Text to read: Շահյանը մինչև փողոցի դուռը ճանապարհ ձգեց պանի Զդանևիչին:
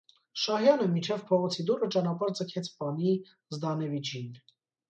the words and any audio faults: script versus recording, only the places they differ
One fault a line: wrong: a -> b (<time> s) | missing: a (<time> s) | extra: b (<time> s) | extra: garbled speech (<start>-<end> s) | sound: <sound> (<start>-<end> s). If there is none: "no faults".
no faults